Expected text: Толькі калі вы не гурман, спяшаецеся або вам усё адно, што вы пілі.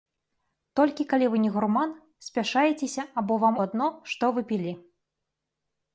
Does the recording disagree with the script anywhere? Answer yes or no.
yes